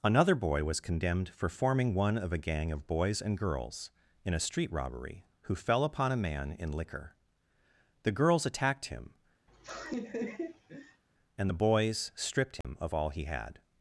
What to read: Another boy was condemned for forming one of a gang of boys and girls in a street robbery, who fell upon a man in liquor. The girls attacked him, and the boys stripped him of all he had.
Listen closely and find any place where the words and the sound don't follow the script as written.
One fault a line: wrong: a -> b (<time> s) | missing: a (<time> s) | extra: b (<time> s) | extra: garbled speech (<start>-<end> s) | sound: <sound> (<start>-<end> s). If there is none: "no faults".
sound: laugh (9.5-11.0 s)
sound: dropout (12.6-12.6 s)